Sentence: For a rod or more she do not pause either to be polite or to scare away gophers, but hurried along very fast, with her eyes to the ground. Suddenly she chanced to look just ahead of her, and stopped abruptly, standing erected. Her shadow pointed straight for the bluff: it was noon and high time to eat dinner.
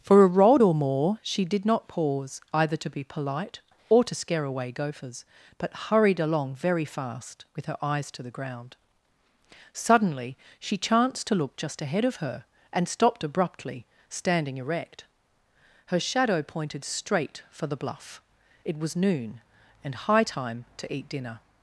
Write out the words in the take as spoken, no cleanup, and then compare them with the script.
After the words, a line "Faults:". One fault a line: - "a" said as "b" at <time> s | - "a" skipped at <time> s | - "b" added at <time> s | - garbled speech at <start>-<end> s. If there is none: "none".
For a rod or more she did not pause either to be polite or to scare away gophers, but hurried along very fast, with her eyes to the ground. Suddenly she chanced to look just ahead of her, and stopped abruptly, standing erect. Her shadow pointed straight for the bluff: it was noon and high time to eat dinner.
Faults:
- "do" said as "did" at 1.4 s
- "erected" said as "erect" at 14.6 s